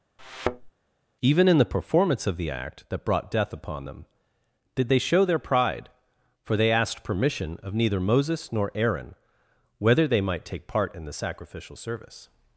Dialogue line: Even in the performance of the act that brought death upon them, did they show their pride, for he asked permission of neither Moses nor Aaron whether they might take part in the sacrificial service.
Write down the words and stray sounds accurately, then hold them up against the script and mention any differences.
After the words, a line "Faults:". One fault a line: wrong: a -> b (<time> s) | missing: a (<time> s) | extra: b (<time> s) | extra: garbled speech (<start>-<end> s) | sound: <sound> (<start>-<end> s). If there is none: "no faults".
Even in the performance of the act that brought death upon them, did they show their pride, for they asked permission of neither Moses nor Aaron whether they might take part in the sacrificial service.
Faults:
sound: thud (0.2-0.7 s)
wrong: he -> they (6.6 s)